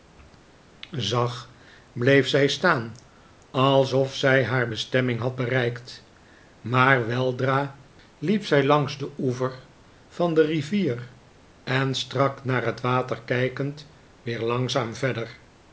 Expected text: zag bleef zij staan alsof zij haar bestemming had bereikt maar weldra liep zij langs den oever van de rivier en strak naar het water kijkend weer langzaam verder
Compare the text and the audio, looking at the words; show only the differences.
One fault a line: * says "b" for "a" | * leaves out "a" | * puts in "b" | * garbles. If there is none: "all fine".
all fine